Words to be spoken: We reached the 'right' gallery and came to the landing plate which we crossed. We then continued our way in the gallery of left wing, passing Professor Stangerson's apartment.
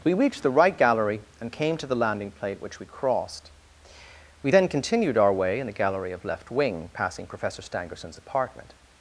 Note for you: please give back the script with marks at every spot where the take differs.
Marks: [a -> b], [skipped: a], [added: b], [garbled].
We reached the 'right' gallery and came to the landing plate which we crossed. We then continued our way in the gallery of left wing, passing Professor Stangerson's apartment.